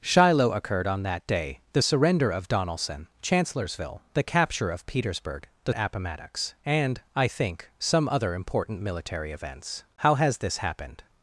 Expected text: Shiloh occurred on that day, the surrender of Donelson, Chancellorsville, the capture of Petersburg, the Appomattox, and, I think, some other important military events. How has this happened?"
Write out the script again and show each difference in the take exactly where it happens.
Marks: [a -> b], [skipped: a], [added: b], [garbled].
Shiloh occurred on that day, the surrender of Donelson, Chancellorsville, the capture of Petersburg, the Appomattox, and, I think, some other important military events. How has this happened?"